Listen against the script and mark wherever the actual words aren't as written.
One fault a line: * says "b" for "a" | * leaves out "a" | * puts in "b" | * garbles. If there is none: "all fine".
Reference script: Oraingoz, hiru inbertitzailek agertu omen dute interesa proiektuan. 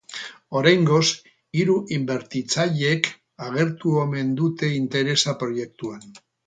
all fine